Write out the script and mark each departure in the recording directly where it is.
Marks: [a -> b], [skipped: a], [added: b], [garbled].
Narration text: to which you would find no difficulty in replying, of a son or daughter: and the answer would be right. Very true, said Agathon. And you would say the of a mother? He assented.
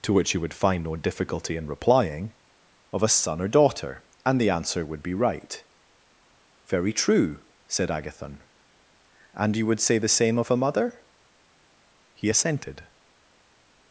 to which you would find no difficulty in replying, of a son or daughter: and the answer would be right. Very true, said Agathon. And you would say the [added: same] of a mother? He assented.